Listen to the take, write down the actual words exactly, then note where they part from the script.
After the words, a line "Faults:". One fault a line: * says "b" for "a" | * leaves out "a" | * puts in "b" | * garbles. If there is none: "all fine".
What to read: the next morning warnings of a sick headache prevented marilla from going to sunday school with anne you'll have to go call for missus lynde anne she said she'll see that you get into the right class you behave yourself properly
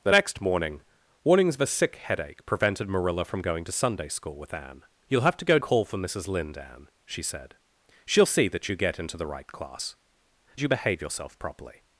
the next morning warnings of a sick headache prevented marilla from going to sunday school with anne you'll have to go call for missus lynde anne she said she'll see that you get into the right class you behave yourself properly
Faults:
all fine